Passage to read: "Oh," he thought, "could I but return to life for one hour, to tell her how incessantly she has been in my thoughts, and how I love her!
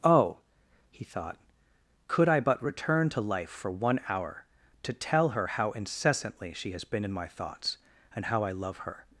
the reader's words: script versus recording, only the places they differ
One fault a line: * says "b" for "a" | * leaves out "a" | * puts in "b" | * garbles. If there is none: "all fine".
all fine